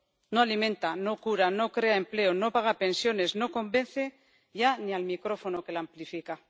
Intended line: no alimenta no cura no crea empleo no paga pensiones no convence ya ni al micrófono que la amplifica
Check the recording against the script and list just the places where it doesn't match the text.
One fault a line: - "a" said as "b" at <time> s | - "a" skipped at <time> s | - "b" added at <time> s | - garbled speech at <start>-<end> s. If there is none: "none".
none